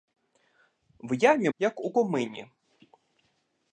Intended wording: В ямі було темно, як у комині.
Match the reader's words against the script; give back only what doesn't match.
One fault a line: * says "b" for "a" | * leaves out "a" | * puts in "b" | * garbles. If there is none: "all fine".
* leaves out "було темно"